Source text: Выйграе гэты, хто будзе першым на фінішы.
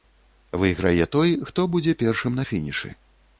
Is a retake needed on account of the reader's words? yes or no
yes